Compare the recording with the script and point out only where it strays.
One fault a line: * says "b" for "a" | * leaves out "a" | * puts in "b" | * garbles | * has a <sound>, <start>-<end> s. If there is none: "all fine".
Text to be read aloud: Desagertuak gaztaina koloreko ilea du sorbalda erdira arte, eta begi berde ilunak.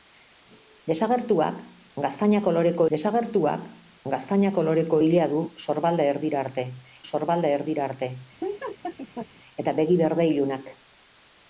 * puts in "desagertuak gaztaina koloreko"
* puts in "sorbalda erdira arte"
* has a laugh, 8.4-9.3 s